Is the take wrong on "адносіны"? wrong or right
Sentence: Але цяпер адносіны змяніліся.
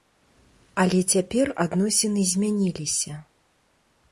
right